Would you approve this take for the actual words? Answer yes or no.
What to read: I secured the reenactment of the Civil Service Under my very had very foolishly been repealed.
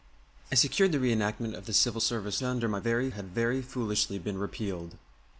yes